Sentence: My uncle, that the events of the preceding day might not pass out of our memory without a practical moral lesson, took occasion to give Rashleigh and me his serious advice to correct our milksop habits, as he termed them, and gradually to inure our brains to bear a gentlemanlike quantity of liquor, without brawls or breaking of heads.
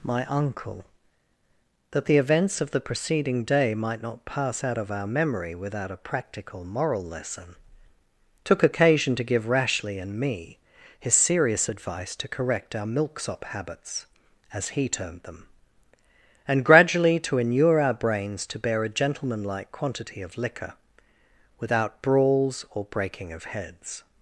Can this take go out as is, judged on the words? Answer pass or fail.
pass